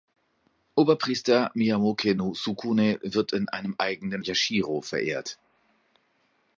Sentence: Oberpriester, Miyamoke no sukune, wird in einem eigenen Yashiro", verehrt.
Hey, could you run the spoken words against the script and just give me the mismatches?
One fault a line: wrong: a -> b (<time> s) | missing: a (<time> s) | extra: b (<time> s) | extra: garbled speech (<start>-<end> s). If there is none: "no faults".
no faults